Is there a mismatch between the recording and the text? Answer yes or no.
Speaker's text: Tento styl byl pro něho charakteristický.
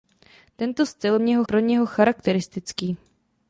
yes